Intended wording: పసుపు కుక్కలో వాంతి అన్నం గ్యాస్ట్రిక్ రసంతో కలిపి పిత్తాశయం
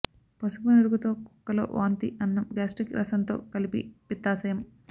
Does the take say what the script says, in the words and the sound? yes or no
no